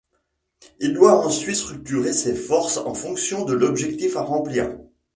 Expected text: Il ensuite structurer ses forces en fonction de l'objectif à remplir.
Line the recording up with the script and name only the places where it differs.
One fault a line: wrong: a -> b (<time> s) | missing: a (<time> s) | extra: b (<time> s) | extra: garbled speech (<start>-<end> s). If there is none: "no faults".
extra: doit (0.9 s)